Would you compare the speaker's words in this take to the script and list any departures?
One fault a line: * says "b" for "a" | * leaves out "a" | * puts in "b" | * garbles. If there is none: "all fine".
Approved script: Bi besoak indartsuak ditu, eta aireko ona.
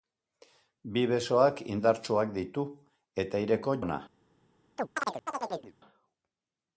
all fine